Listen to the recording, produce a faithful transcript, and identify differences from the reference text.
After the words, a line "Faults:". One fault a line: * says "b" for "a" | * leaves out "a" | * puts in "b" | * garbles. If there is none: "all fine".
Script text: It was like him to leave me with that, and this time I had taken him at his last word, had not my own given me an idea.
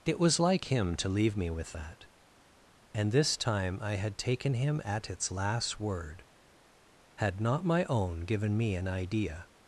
It was like him to leave me with that, and this time I had taken him at its last word, had not my own given me an idea.
Faults:
* says "its" for "his"